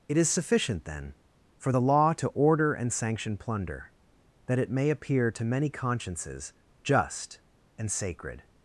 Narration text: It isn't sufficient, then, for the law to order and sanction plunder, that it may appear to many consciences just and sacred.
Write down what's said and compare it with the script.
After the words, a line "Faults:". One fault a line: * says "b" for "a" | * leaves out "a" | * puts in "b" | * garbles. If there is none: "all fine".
It is sufficient, then, for the law to order and sanction plunder, that it may appear to many consciences just and sacred.
Faults:
* says "is" for "isn't"